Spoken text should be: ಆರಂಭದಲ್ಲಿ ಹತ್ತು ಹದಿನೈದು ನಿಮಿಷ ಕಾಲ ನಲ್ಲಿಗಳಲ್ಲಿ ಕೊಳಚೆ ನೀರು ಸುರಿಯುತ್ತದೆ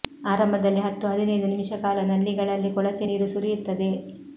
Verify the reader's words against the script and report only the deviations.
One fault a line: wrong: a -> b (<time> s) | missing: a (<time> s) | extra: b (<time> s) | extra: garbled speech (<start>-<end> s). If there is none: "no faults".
no faults